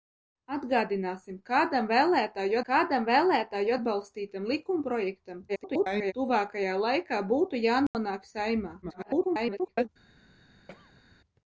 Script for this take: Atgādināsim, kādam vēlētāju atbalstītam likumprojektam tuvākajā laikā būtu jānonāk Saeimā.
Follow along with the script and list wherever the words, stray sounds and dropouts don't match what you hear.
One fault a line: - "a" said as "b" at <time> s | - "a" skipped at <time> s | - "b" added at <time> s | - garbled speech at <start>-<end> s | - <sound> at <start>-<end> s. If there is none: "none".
- "kādam vēlētāju" added at 2.7 s
- garbled speech at 5.5-6.1 s
- dropout at 7.9-7.9 s
- garbled speech at 8.8-9.9 s
- throat clearing at 10.7-11.0 s